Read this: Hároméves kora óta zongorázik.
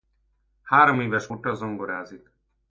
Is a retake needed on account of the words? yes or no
yes